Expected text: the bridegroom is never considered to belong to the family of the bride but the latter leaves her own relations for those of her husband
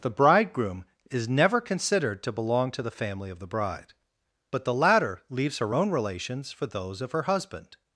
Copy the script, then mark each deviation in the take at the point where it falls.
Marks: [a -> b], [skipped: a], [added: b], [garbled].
the bridegroom is never considered to belong to the family of the bride but the latter leaves her own relations for those of her husband